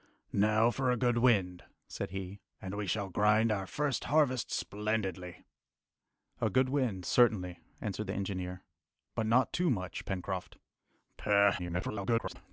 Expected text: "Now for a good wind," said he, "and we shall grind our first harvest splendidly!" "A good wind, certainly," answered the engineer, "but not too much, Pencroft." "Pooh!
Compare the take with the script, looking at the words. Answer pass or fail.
fail